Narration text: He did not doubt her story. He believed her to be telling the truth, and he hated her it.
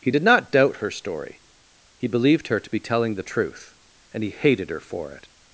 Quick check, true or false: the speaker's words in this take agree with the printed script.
false